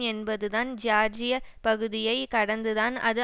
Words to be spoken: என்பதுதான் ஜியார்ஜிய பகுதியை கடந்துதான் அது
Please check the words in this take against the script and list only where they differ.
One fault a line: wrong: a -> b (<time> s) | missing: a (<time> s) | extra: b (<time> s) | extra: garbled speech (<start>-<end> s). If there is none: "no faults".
no faults